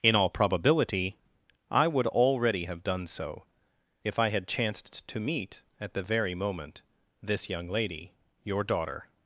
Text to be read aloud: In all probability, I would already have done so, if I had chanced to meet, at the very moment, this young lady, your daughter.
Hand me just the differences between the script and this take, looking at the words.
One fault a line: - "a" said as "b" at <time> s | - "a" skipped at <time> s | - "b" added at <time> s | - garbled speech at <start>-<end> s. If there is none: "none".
none